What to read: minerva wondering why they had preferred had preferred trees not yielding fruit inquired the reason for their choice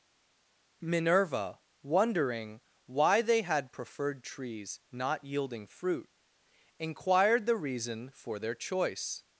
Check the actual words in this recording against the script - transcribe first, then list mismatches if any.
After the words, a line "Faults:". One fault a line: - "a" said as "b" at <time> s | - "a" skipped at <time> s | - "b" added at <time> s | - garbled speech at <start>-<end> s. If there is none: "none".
minerva wondering why they had preferred trees not yielding fruit inquired the reason for their choice
Faults:
- "had preferred" skipped at 4.2 s